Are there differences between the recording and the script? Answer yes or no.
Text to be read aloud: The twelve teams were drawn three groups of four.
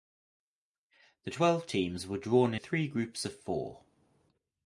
no